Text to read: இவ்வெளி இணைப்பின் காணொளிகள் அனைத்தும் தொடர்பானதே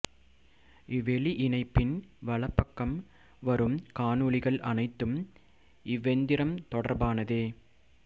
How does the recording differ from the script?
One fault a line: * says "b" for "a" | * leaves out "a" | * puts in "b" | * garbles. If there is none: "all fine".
* puts in "வலப்பக்கம் வரும்"
* puts in "இவ்வெந்திரம்"